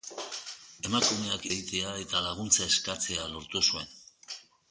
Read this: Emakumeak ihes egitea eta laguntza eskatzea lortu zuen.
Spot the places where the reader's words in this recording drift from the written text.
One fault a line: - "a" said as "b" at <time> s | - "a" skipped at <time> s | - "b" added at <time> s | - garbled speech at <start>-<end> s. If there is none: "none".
- "ihes" skipped at 1.4 s